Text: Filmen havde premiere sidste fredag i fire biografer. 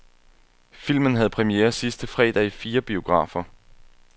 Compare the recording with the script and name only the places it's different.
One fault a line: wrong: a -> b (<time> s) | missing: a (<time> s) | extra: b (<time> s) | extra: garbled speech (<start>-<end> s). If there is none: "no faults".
no faults